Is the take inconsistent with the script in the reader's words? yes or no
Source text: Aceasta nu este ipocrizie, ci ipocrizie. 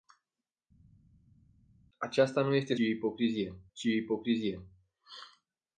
no